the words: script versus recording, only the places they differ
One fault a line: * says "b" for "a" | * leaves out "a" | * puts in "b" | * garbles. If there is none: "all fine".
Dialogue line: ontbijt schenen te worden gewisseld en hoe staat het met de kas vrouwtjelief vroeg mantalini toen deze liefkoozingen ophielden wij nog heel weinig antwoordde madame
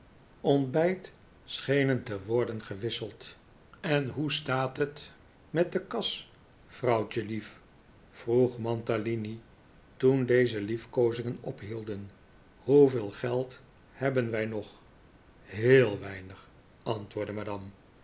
* puts in "hoeveel geld hebben"